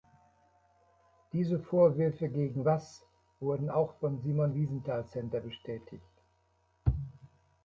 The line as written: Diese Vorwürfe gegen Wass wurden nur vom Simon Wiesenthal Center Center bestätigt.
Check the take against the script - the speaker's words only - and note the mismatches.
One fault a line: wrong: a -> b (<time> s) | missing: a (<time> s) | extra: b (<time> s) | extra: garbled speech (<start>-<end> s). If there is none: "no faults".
wrong: nur -> auch (3.7 s)
missing: Center (5.4 s)